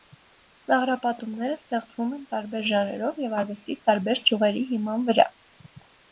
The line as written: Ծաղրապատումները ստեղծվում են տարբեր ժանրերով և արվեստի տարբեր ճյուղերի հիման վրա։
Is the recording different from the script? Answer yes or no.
no